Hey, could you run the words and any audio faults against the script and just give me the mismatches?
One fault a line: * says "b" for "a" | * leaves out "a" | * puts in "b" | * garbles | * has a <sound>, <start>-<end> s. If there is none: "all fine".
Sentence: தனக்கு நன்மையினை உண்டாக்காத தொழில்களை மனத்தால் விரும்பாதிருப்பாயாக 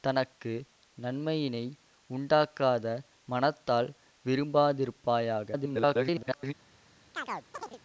* leaves out "தொழில்களை"
* garbles
* has a chirp, 7.1-7.8 s